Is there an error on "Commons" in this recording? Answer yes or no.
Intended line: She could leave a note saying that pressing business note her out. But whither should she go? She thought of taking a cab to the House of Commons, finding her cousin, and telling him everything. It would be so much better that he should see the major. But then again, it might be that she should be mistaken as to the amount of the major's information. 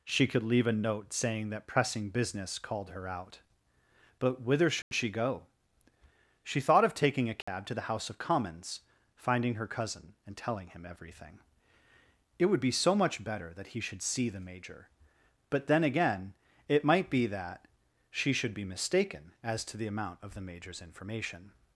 no